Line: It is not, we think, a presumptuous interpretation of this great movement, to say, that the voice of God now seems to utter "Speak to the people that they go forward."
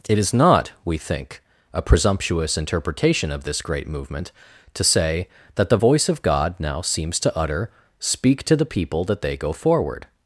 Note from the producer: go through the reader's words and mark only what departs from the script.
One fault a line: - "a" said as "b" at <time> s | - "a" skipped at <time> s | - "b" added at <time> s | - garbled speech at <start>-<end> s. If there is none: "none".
none